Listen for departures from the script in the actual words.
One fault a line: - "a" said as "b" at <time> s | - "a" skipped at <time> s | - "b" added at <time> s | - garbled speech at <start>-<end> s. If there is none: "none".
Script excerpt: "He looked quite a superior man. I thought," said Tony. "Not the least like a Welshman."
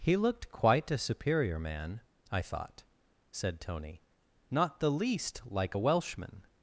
none